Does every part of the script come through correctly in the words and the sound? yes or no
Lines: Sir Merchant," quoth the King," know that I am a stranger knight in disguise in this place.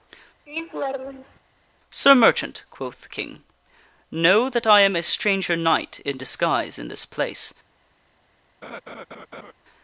no